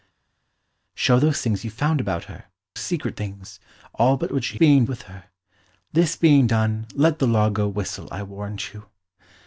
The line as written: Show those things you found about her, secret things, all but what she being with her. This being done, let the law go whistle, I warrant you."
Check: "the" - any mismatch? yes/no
no